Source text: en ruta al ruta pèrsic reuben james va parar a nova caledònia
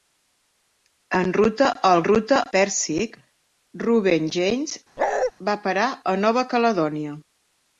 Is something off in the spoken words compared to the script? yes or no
no